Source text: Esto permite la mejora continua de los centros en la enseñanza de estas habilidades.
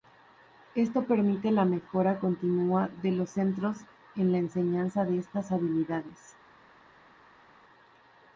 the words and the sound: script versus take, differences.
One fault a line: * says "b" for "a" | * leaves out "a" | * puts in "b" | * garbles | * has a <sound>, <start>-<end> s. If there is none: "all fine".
all fine